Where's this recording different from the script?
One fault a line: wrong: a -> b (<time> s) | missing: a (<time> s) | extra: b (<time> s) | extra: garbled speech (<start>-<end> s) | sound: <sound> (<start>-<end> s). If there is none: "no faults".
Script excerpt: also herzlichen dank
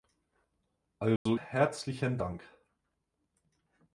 sound: dropout (1.2-1.3 s)